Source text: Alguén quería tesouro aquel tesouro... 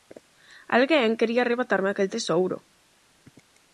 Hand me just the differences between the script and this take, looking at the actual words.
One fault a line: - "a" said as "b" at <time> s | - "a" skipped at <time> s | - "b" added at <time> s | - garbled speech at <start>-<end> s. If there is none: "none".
- "tesouro" said as "arrebatarme" at 1.4 s